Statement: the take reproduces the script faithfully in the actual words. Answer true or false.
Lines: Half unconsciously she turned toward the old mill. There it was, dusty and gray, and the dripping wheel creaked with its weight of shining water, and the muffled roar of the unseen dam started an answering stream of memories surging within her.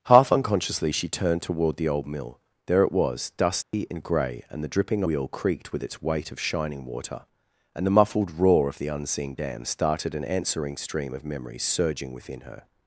true